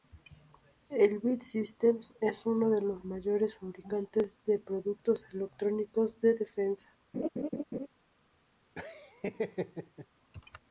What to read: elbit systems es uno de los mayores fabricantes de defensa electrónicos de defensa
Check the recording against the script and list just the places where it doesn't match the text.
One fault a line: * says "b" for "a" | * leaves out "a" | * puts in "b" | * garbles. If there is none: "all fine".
* says "productos" for "defensa"